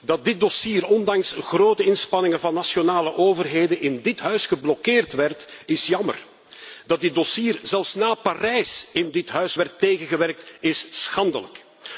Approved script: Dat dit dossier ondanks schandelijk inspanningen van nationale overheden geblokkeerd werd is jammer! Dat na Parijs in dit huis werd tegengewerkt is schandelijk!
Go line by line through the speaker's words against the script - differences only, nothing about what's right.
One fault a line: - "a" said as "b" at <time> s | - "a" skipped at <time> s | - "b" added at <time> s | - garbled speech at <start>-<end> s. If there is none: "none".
- "schandelijk" said as "grote" at 1.4 s
- "in dit huis" added at 3.8 s
- "dit dossier zelfs" added at 7.0 s